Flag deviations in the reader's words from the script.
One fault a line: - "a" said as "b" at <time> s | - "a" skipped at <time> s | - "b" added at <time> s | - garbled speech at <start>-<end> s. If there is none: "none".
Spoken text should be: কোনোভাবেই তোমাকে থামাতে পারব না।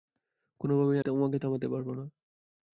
none